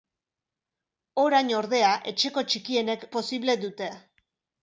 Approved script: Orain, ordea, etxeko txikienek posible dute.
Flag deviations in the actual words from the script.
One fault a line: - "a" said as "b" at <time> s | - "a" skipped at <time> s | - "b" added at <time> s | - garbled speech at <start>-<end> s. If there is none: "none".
none